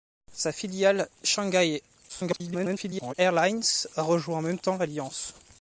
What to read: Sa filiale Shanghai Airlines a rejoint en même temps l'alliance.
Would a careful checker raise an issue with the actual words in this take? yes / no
yes